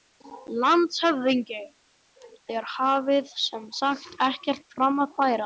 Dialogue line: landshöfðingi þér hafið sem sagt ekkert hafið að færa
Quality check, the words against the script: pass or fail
fail